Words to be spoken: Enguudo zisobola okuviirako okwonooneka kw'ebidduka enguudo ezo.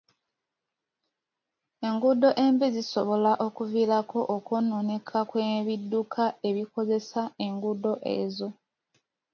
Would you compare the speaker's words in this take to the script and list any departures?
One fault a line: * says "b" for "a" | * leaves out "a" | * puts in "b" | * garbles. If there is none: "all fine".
* puts in "embi"
* puts in "ebikozesa"